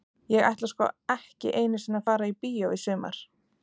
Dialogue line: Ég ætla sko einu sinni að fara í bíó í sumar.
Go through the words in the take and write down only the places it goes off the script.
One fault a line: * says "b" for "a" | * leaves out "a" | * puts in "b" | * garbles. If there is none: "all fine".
* puts in "ekki"